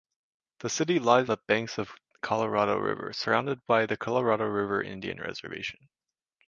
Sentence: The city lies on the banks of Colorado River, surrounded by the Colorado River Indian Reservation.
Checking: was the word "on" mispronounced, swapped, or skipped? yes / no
yes